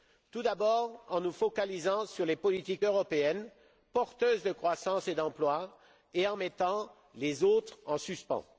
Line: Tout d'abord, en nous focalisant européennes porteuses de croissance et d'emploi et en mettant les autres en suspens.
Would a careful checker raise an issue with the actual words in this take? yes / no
yes